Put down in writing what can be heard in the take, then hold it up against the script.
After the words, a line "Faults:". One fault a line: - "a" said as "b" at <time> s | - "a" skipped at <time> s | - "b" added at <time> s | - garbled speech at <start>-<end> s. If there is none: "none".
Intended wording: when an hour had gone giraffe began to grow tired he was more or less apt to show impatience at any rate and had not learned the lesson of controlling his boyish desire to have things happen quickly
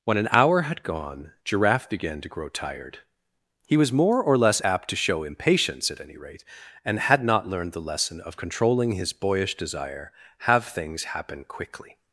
when an hour had gone giraffe began to grow tired he was more or less apt to show impatience at any rate and had not learned the lesson of controlling his boyish desire have things happen quickly
Faults:
- "to" skipped at 10.1 s